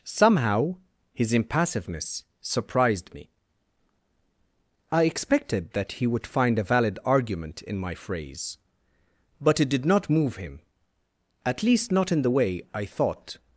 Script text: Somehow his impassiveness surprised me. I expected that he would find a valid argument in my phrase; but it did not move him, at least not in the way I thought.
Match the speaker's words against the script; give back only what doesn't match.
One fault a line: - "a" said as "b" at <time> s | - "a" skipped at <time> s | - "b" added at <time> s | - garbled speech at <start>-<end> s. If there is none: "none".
none